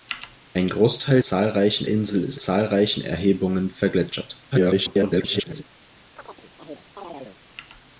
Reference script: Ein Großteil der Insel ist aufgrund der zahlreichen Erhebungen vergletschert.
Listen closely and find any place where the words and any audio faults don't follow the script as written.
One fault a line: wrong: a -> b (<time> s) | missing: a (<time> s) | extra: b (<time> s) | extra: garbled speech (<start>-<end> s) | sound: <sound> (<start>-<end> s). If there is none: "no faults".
wrong: der -> zahlreichen (1.2 s)
missing: aufgrund der (2.4 s)
extra: garbled speech (4.5-5.6 s)
sound: chirp (6.2-7.4 s)